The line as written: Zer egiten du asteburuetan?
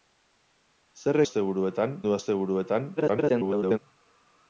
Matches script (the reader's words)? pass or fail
fail